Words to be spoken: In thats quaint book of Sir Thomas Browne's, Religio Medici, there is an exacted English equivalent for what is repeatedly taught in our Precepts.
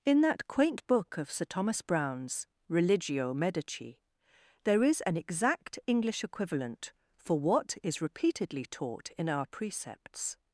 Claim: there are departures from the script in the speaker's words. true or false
true